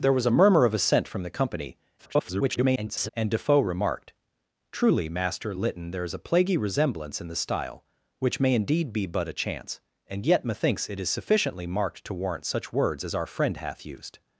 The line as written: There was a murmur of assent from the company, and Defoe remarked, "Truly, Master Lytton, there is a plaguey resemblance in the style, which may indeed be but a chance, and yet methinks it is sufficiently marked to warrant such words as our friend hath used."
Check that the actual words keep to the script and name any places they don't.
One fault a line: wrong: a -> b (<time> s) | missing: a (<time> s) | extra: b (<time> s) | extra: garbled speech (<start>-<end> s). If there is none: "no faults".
extra: garbled speech (2.0-3.1 s)